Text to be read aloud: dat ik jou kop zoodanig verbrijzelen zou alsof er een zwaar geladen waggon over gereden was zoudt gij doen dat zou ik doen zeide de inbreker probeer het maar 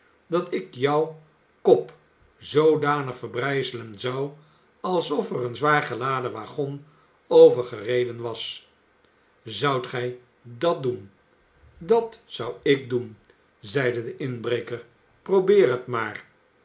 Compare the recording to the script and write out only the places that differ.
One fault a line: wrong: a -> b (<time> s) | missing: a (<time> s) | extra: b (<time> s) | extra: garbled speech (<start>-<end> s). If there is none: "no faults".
extra: dat (10.4 s)